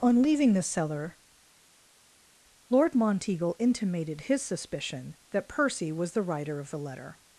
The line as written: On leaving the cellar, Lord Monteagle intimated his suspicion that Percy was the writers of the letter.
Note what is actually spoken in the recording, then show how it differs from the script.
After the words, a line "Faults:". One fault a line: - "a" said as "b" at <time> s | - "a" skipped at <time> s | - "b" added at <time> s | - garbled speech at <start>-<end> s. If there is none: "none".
On leaving the cellar, Lord Monteagle intimated his suspicion that Percy was the writer of the letter.
Faults:
- "writers" said as "writer" at 6.2 s